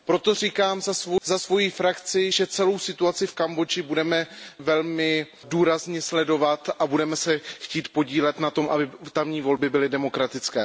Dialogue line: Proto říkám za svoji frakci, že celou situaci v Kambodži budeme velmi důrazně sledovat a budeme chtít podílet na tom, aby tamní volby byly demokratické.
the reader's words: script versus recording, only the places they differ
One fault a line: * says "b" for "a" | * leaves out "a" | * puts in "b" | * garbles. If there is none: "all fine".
* puts in "se"